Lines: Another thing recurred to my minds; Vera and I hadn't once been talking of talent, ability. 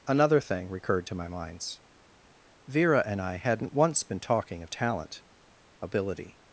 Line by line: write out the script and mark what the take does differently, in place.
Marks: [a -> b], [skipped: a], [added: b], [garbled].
Another thing recurred to my minds; Vera and I hadn't once been talking of talent, ability.